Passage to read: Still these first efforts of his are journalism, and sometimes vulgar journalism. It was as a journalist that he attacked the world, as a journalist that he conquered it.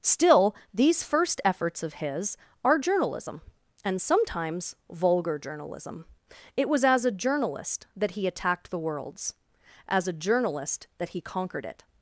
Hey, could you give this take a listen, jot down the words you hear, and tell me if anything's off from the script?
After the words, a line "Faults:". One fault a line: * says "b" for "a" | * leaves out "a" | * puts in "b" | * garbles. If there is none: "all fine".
Still these first efforts of his are journalism, and sometimes vulgar journalism. It was as a journalist that he attacked the worlds, as a journalist that he conquered it.
Faults:
* says "worlds" for "world"